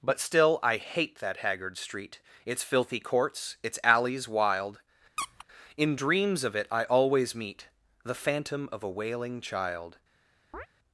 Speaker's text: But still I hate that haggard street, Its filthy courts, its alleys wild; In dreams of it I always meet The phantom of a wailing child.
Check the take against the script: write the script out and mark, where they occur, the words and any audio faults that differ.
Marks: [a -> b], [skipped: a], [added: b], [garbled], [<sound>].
But still I hate that haggard street, Its filthy courts, its alleys wild; [squeak] In dreams of it I always meet The phantom of a wailing child. [chirp]